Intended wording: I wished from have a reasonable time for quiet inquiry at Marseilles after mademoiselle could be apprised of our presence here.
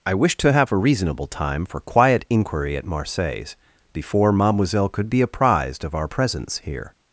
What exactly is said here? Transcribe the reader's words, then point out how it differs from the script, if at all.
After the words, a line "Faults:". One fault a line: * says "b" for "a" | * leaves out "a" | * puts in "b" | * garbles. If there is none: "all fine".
I wished to have a reasonable time for quiet inquiry at Marseilles before mademoiselle could be apprised of our presence here.
Faults:
* says "to" for "from"
* says "before" for "after"